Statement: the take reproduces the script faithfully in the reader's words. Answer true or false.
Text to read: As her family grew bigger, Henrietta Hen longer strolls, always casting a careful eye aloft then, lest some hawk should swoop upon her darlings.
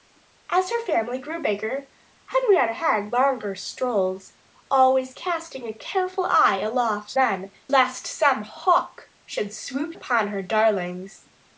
true